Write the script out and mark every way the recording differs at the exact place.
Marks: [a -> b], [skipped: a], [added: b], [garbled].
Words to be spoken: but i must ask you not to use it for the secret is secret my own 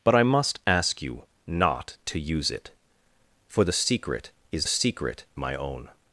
but i must ask you not to use it for the secret is secret my own